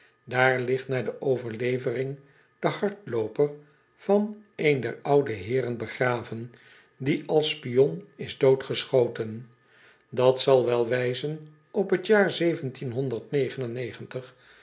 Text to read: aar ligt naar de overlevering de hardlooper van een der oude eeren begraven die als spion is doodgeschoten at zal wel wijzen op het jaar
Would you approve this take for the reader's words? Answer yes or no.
yes